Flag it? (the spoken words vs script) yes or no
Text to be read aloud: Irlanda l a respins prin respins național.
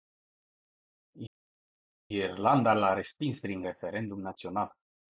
yes